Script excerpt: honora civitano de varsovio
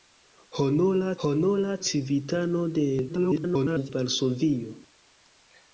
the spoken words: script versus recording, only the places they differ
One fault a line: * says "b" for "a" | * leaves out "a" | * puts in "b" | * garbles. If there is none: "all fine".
* puts in "honora"
* garbles